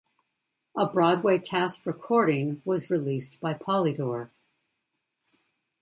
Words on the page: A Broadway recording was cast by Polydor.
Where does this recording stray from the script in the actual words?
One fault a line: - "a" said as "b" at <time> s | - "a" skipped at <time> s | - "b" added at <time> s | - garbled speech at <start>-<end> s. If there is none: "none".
- "cast" added at 1.4 s
- "cast" said as "released" at 2.9 s